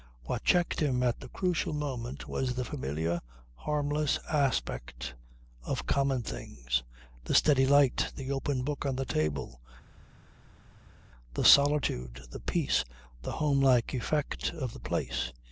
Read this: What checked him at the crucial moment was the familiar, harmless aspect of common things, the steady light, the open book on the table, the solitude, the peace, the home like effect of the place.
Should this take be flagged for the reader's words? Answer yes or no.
no